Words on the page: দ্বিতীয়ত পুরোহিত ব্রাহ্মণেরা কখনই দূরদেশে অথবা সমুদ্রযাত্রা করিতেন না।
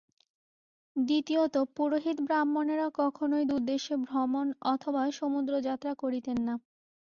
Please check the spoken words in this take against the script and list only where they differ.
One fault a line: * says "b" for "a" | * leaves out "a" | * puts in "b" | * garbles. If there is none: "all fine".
* puts in "ভ্রমণ"